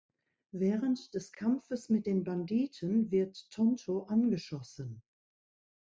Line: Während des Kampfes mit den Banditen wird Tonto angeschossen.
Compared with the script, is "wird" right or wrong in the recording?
right